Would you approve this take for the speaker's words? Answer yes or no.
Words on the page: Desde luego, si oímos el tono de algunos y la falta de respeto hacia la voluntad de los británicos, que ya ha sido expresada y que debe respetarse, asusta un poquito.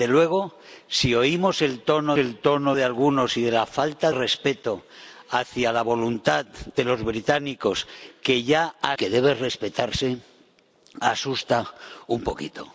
no